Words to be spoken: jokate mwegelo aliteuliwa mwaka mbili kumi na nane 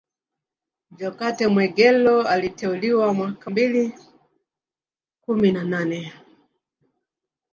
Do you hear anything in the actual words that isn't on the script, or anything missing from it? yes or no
no